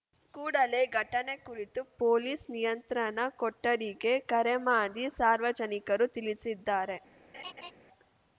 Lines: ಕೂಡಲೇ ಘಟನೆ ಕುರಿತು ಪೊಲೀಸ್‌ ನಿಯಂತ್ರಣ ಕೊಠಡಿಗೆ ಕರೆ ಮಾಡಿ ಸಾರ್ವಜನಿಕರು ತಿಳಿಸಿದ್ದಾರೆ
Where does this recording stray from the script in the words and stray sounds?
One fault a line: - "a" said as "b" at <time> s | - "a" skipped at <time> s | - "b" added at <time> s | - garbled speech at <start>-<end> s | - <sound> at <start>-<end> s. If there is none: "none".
- laugh at 7.3-7.7 s